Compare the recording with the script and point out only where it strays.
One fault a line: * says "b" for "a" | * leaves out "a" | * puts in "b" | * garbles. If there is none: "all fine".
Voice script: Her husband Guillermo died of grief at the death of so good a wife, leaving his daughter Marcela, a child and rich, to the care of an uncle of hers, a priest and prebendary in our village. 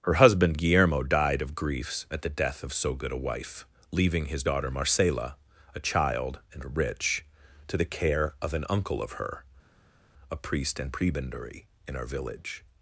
* says "griefs" for "grief"
* says "her" for "hers"